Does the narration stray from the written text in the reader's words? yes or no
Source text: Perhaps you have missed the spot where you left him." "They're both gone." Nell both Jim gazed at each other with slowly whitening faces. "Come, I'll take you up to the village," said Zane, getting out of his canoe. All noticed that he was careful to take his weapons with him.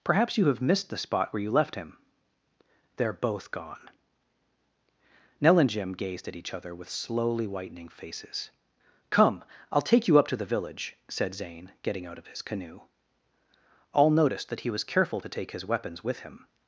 yes